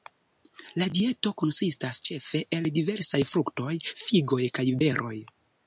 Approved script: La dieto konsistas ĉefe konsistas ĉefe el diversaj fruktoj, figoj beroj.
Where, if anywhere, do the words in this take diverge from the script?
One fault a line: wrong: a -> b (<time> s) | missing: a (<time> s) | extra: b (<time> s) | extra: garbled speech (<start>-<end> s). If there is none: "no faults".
missing: konsistas ĉefe (2.4 s)
extra: kaj (4.6 s)